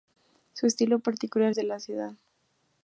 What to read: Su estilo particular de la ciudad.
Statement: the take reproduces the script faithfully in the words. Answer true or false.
true